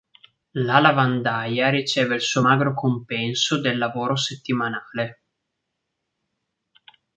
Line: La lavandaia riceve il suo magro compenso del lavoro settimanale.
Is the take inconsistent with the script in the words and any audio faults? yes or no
no